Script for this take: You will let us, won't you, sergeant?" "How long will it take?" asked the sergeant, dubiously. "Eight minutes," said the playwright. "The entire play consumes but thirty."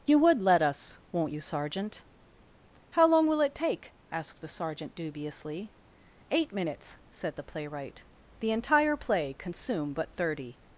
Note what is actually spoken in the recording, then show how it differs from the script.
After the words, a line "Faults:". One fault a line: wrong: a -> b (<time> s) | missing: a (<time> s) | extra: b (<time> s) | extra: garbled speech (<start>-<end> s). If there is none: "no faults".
You would let us, won't you, sergeant?" "How long will it take?" asked the sergeant, dubiously. "Eight minutes," said the playwright. "The entire play consume but thirty."
Faults:
wrong: will -> would (0.2 s)
wrong: consumes -> consume (9.3 s)